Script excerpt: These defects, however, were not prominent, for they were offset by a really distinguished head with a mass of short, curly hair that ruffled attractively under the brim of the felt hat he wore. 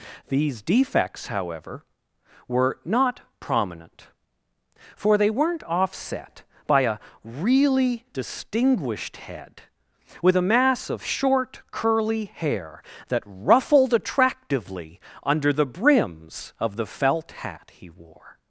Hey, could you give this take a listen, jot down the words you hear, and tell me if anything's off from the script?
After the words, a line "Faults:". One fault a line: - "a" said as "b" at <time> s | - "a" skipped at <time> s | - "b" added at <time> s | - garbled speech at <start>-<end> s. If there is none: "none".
These defects, however, were not prominent, for they weren't offset by a really distinguished head with a mass of short, curly hair that ruffled attractively under the brims of the felt hat he wore.
Faults:
- "were" said as "weren't" at 5.3 s
- "brim" said as "brims" at 15.7 s